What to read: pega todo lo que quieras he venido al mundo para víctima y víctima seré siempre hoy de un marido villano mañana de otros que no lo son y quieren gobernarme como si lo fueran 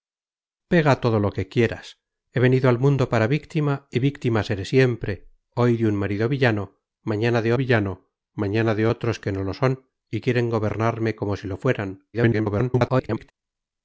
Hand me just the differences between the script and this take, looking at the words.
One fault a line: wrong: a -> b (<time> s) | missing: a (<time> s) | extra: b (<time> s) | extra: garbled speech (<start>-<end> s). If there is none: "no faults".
extra: villano mañana de (7.5 s)
extra: garbled speech (12.1-13.3 s)